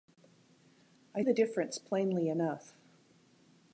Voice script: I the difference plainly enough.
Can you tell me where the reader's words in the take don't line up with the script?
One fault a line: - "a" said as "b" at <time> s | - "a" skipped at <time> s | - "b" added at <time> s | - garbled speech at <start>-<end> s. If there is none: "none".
none